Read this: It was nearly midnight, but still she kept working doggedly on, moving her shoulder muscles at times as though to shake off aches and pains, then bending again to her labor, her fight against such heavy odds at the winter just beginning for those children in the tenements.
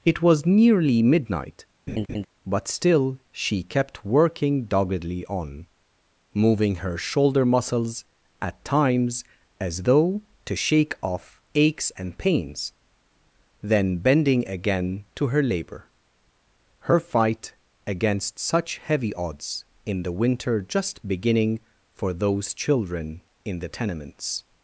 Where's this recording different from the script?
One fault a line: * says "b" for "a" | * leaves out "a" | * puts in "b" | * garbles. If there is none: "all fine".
* says "in" for "at"